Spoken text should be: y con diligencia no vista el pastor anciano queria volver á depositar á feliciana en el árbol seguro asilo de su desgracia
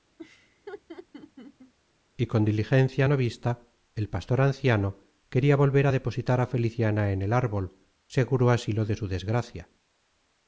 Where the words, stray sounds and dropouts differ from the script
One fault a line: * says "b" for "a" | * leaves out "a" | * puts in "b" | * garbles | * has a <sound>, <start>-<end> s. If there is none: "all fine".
* has a laugh, 0.2-1.7 s